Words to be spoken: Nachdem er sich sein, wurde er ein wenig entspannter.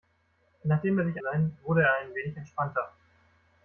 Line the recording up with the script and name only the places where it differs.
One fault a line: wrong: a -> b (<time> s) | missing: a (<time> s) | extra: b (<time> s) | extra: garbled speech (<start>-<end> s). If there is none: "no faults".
no faults